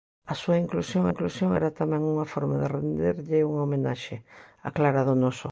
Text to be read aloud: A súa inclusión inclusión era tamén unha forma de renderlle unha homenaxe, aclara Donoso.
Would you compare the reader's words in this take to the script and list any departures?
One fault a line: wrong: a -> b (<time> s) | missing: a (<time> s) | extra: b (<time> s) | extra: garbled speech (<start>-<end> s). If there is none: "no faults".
no faults